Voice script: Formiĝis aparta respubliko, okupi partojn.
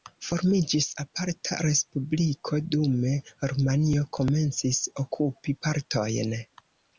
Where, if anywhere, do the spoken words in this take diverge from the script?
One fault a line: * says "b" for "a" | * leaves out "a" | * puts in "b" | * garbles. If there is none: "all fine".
* puts in "dume Rumanio komencis"